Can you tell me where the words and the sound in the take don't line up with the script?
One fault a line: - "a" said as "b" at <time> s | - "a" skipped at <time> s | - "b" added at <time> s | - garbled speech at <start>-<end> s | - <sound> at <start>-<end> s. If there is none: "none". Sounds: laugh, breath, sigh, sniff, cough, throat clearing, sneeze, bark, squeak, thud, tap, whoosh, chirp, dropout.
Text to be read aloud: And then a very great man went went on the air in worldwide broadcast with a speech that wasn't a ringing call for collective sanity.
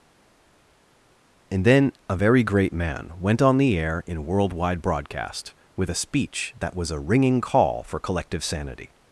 - "went" skipped at 3.4 s
- "wasn't" said as "was" at 6.7 s